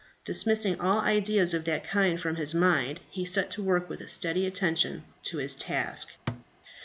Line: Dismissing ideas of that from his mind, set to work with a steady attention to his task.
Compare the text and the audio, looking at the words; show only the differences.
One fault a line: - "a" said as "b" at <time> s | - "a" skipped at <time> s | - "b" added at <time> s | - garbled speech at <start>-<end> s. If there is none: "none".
- "all" added at 0.8 s
- "kind" added at 1.8 s
- "he" added at 3.1 s